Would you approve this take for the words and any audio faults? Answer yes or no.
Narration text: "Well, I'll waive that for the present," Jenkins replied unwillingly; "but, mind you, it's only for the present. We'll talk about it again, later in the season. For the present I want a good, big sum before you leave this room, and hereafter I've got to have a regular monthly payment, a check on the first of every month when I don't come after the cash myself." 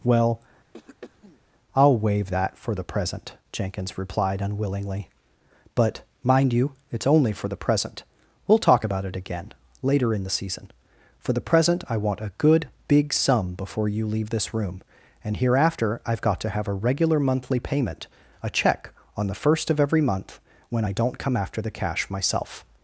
no